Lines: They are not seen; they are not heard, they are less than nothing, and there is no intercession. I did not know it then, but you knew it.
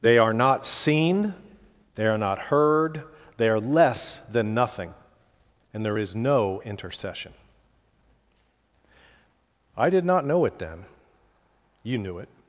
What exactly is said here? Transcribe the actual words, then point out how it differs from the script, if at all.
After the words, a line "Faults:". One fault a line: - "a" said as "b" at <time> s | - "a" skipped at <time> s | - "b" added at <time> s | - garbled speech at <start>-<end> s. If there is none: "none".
They are not seen; they are not heard, they are less than nothing, and there is no intercession. I did not know it then, you knew it.
Faults:
- "but" skipped at 10.9 s